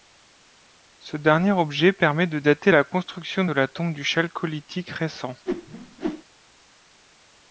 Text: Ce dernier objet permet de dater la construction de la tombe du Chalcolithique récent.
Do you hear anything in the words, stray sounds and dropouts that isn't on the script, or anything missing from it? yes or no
yes